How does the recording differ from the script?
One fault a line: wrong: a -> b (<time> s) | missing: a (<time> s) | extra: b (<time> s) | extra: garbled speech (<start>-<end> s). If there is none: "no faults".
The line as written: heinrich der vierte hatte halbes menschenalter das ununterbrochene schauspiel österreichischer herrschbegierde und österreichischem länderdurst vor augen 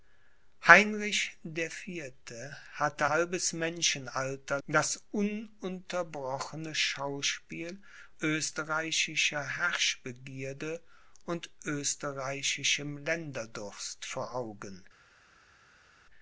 no faults